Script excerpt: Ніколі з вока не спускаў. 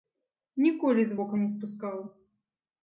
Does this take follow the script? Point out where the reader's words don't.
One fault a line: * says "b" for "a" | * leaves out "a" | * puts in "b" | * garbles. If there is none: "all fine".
all fine